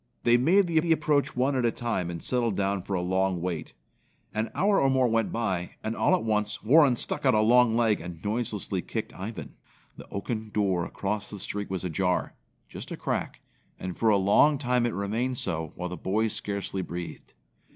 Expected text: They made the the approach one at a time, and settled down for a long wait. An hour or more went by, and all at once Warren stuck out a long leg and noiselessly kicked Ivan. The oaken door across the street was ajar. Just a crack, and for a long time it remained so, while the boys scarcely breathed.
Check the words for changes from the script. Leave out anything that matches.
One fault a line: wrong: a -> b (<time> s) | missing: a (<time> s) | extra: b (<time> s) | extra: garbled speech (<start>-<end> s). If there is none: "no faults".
no faults